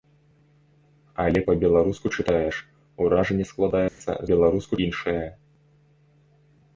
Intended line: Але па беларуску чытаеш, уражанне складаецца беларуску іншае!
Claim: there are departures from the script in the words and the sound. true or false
true